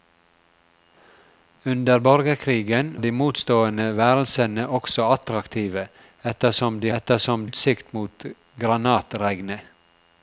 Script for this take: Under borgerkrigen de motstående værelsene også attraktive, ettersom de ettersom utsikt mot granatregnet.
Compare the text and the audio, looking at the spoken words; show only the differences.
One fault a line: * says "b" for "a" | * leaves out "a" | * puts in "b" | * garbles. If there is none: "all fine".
all fine